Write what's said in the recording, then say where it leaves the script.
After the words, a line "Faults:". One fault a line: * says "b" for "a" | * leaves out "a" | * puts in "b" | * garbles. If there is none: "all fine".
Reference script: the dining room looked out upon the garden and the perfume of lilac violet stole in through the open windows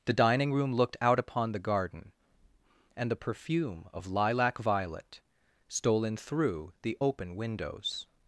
the dining room looked out upon the garden and the perfume of lilac violet stole in through the open windows
Faults:
all fine